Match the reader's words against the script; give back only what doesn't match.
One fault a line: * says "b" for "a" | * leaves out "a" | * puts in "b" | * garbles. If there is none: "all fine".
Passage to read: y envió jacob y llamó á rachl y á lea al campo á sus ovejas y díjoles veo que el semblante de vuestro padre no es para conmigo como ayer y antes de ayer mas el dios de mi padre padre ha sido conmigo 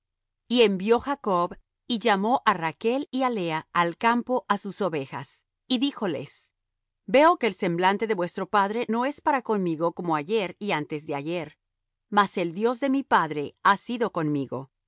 * leaves out "padre"